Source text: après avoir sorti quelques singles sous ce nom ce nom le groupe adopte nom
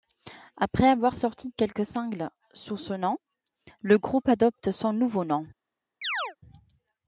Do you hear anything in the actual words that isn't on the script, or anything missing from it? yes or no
yes